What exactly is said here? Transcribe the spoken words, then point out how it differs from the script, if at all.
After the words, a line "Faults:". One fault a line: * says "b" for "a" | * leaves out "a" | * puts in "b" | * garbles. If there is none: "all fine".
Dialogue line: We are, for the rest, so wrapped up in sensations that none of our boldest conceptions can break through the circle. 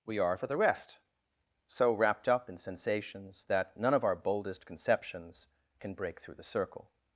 We are, for the rest, so wrapped up in sensations that none of our boldest conceptions can break through the circle.
Faults:
all fine